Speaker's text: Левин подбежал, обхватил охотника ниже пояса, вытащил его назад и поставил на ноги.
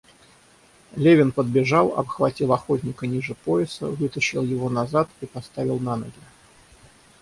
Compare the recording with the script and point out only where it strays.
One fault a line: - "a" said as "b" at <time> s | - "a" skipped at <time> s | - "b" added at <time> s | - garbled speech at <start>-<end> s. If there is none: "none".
none